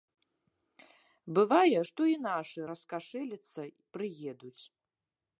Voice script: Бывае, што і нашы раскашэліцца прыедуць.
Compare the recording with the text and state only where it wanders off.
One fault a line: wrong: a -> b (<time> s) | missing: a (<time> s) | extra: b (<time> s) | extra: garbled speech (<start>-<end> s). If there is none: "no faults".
no faults